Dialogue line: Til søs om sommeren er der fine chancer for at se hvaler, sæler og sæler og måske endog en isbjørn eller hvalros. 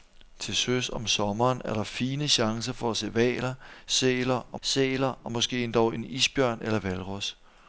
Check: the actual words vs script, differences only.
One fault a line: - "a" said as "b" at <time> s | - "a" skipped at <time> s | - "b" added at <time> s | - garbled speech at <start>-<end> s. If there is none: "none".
none